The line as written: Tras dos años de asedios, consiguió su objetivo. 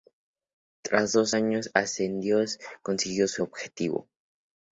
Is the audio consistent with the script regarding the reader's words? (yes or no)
yes